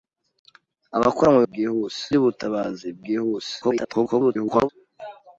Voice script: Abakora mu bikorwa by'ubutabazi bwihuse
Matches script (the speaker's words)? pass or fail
fail